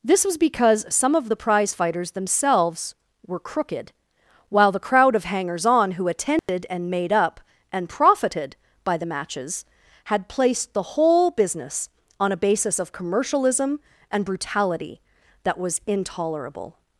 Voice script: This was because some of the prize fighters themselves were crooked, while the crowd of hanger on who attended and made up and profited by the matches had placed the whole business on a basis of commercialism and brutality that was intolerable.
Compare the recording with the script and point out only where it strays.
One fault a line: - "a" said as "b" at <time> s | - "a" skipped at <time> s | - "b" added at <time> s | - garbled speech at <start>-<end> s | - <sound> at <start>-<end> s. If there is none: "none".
- "hanger" said as "hangers" at 5.2 s
- dropout at 6.4-6.5 s